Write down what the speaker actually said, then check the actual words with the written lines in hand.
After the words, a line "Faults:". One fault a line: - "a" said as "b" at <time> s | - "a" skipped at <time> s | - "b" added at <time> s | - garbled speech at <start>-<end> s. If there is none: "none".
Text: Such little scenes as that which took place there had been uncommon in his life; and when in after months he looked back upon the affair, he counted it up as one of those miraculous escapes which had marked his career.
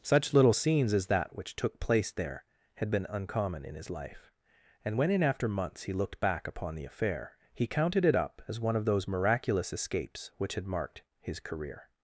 Such little scenes as that which took place there had been uncommon in his life; and when in after months he looked back upon the affair, he counted it up as one of those miraculous escapes which had marked his career.
Faults:
none